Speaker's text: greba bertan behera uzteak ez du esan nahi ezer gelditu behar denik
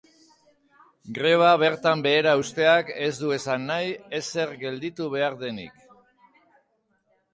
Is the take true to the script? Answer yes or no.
yes